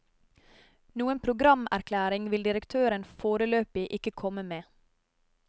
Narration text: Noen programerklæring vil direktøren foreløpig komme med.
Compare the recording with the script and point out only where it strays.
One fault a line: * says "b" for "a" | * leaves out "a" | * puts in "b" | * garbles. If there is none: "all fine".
* puts in "ikke"